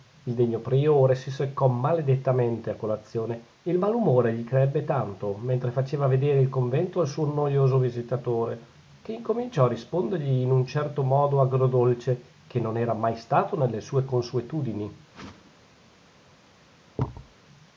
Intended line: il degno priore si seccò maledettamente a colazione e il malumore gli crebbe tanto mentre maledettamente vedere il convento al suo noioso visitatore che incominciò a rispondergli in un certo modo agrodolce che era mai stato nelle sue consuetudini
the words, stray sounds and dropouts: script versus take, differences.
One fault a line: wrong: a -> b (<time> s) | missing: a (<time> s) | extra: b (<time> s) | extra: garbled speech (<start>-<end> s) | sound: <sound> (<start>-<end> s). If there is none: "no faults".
wrong: maledettamente -> faceva (5.7 s)
extra: non (12.6 s)
sound: whoosh (15.1-15.5 s)
sound: thud (17.0-17.3 s)